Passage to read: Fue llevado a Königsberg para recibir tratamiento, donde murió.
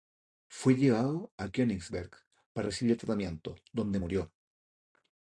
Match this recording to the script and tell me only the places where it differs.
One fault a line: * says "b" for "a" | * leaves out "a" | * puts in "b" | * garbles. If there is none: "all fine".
all fine